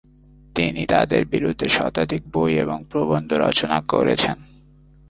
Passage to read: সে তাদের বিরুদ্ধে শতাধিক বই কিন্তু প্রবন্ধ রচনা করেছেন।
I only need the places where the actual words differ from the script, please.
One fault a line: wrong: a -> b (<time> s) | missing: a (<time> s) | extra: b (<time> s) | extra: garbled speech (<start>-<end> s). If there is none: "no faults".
wrong: সে -> তিনি (0.6 s)
wrong: কিন্তু -> এবং (2.6 s)